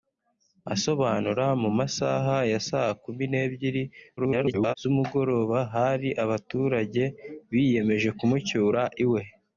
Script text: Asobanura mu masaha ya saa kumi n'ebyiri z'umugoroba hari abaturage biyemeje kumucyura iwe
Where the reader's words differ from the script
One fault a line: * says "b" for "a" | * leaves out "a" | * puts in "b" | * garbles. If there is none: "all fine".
* garbles